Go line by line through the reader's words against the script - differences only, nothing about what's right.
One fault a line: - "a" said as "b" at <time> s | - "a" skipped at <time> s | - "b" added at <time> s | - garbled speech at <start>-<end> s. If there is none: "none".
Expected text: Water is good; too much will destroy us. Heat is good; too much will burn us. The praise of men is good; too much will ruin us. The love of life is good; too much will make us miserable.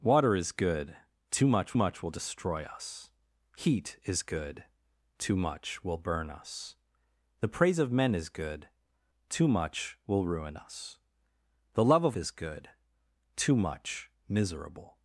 - "much" added at 1.7 s
- "life" skipped at 12.2 s
- "will make us" skipped at 14.1 s